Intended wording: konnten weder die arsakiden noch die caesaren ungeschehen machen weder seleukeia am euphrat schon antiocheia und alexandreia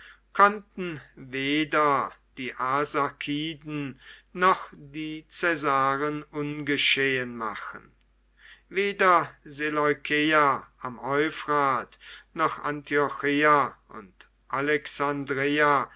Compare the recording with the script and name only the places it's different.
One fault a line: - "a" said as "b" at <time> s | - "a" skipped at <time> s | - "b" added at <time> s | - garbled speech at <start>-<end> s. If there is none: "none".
- "schon" said as "noch" at 12.3 s